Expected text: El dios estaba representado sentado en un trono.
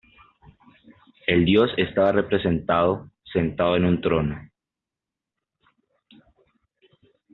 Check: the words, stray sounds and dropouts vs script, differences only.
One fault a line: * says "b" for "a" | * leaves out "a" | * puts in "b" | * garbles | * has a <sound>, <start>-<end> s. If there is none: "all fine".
all fine